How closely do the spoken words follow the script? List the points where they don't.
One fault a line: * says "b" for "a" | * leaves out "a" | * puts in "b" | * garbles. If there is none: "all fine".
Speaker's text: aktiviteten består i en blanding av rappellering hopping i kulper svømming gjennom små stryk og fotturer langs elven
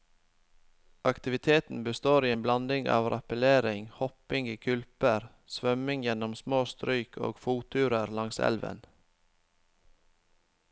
all fine